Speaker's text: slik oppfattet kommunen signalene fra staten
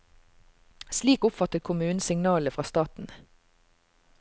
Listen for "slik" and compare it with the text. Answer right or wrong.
right